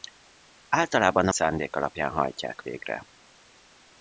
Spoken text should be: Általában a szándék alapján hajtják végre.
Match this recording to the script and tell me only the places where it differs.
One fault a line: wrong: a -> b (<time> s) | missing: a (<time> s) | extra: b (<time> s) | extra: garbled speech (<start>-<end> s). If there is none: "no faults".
no faults